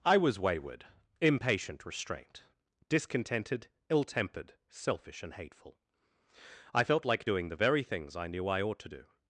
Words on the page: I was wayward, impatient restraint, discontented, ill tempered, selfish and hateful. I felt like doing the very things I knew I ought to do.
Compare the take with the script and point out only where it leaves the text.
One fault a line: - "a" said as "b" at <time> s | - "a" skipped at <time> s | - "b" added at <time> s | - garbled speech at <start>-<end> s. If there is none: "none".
none